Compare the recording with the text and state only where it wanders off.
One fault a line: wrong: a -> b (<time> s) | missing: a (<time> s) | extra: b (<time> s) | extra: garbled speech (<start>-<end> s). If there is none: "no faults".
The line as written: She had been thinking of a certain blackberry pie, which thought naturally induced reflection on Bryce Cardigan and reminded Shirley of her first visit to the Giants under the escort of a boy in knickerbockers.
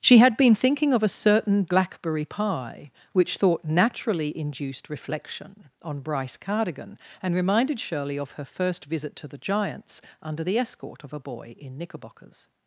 no faults